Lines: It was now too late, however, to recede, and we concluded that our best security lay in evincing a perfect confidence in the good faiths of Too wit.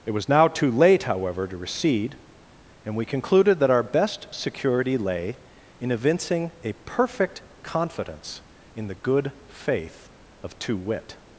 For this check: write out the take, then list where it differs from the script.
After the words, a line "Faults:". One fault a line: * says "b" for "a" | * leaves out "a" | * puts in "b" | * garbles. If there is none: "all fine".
It was now too late, however, to recede, and we concluded that our best security lay in evincing a perfect confidence in the good faith of Too wit.
Faults:
* says "faith" for "faiths"